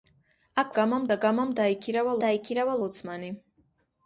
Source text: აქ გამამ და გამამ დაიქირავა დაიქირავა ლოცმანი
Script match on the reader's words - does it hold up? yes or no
yes